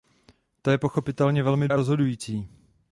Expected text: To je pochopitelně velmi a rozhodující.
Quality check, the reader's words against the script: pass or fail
pass